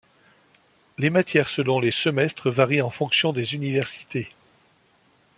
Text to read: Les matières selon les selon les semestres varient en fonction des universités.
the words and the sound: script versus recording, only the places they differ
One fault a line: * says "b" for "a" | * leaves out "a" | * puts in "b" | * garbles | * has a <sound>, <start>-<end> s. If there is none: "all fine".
* leaves out "selon les"